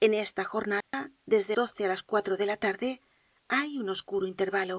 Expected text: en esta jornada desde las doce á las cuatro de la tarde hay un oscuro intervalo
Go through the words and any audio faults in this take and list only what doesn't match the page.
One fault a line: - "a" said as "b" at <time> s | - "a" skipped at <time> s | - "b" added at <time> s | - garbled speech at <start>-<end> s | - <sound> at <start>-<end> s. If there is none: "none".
- dropout at 0.8-0.9 s
- "las" skipped at 1.6 s